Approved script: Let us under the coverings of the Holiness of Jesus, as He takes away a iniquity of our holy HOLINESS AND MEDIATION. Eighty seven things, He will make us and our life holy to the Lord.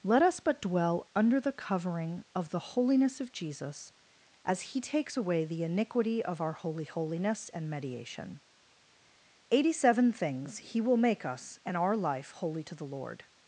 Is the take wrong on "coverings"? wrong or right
wrong